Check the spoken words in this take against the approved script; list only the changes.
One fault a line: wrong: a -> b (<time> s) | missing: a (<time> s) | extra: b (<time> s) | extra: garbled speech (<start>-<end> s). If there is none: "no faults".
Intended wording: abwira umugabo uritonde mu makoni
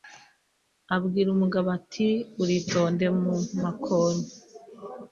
extra: ati (1.8 s)